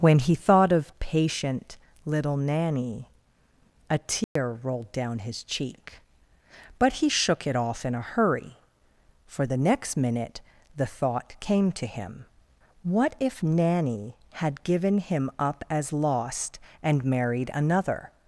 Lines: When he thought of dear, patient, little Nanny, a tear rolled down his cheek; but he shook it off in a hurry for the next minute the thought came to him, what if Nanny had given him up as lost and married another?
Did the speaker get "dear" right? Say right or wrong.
wrong